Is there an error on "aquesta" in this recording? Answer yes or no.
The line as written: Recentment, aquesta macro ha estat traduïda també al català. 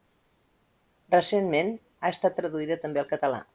yes